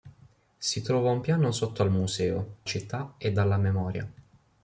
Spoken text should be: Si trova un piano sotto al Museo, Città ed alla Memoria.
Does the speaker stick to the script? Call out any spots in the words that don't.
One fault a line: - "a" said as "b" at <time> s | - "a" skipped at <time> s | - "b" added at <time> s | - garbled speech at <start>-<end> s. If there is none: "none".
none